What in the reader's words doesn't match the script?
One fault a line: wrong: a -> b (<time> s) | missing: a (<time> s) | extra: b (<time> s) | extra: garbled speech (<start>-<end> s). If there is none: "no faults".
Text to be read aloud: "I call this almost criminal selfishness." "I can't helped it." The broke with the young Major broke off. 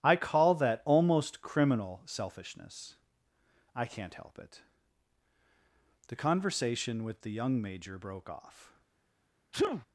wrong: this -> that (0.6 s)
wrong: helped -> help (4.1 s)
wrong: broke -> conversation (6.2 s)